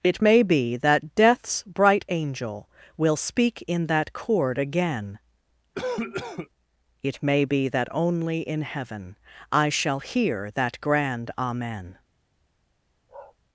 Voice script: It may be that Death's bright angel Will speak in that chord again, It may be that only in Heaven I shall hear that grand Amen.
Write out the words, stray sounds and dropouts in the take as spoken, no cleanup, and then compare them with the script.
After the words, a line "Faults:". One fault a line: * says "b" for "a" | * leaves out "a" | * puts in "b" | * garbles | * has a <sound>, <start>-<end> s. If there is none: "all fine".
It may be that Death's bright angel Will speak in that chord again, It may be that only in Heaven I shall hear that grand Amen.
Faults:
* has a cough, 5.7-6.5 s
* has a bark, 13.1-13.4 s